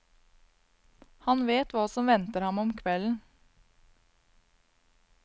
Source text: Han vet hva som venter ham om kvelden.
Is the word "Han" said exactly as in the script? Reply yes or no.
yes